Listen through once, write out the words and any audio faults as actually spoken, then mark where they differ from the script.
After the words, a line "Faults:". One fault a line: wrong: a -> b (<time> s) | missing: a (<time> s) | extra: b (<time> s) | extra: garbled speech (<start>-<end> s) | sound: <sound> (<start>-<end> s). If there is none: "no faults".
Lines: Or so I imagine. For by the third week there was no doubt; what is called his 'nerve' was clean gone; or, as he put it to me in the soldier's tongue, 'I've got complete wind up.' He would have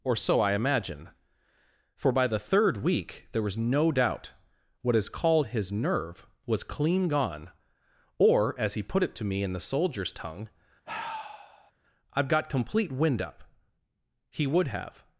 Or so I imagine. For by the third week there was no doubt; what is called his 'nerve' was clean gone; or, as he put it to me in the soldier's tongue, 'I've got complete wind up.' He would have
Faults:
sound: sigh (10.9-11.7 s)